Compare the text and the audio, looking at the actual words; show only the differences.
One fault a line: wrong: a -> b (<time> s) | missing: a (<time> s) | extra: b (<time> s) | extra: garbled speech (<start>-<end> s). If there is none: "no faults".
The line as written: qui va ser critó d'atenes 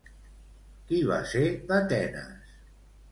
missing: critó (1.4 s)